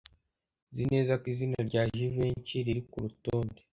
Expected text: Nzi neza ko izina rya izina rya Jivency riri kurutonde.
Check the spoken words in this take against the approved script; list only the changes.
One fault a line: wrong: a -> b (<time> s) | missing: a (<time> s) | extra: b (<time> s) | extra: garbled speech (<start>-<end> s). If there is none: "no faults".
missing: izina rya (1.8 s)